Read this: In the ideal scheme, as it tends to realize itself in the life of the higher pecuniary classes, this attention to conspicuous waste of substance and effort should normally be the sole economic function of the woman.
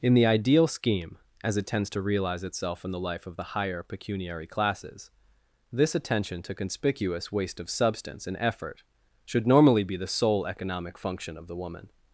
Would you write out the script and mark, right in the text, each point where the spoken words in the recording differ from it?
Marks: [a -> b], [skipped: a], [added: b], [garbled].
In the ideal scheme, as it tends to realize itself in the life of the higher pecuniary classes, this attention to conspicuous waste of substance and effort should normally be the sole economic function of the woman.